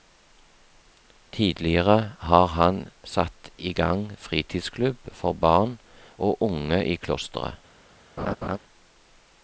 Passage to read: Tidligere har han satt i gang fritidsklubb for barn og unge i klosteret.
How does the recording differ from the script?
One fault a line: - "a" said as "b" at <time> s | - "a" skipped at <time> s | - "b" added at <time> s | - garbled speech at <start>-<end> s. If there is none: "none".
none